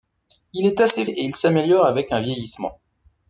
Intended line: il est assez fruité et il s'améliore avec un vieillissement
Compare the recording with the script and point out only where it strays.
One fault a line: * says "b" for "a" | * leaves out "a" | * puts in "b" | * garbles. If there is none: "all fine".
* leaves out "fruité"